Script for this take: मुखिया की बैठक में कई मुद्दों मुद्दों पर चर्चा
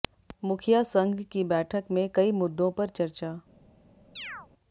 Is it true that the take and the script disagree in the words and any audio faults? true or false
true